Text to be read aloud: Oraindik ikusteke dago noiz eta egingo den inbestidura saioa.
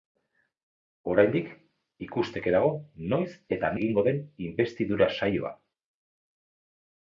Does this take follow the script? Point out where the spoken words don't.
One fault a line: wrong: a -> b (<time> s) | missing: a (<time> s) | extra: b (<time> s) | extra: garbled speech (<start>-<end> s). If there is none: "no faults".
no faults